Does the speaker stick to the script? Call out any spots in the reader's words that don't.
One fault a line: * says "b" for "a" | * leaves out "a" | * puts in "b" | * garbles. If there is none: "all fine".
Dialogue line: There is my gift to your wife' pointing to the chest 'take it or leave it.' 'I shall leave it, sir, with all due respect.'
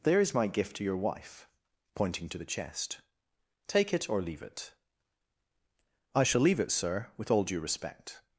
all fine